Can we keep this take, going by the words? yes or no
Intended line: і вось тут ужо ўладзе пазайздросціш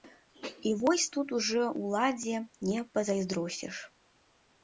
no